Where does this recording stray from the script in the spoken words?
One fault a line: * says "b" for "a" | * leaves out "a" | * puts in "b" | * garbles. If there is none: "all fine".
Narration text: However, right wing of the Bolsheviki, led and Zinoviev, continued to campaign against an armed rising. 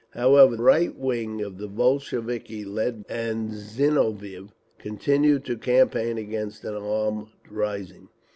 all fine